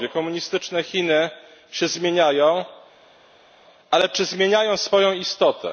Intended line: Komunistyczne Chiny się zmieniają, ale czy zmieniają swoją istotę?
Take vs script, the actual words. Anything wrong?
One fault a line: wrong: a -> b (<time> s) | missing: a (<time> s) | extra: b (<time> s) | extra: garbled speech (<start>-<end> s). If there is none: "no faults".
no faults